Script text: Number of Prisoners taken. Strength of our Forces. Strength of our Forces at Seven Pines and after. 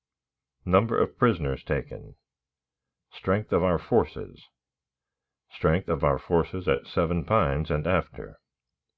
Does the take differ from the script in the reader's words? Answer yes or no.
no